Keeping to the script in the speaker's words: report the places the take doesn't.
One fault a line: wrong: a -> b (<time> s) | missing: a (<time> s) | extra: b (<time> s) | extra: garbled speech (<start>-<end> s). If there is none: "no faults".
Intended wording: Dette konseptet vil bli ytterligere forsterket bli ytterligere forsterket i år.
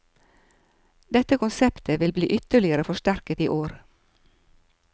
missing: bli ytterligere forsterket (3.4 s)